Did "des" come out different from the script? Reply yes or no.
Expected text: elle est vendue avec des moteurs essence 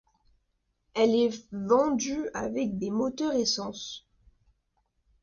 no